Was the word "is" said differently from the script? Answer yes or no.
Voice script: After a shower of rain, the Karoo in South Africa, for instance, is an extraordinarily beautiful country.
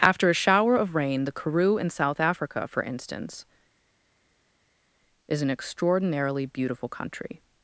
no